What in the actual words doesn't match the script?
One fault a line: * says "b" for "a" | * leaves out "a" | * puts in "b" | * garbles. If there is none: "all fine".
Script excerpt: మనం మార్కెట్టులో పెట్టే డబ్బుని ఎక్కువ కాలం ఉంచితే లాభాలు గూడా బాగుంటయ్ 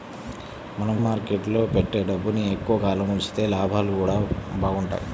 all fine